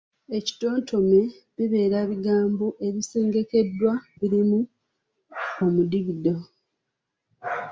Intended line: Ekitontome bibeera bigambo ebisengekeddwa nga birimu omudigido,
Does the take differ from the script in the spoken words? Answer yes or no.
yes